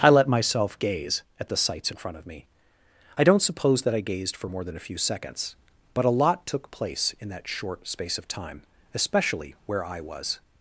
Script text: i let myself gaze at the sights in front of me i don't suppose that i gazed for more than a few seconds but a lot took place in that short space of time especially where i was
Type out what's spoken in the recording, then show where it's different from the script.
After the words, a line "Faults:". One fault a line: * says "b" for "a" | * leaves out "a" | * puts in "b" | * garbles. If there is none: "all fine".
i let myself gaze at the sights in front of me i don't suppose that i gazed for more than a few seconds but a lot took place in that short space of time especially where i was
Faults:
all fine